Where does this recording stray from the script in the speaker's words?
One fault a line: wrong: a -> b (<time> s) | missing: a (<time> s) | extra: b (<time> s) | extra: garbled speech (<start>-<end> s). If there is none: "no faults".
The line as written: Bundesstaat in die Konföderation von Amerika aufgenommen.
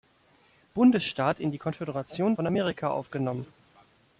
no faults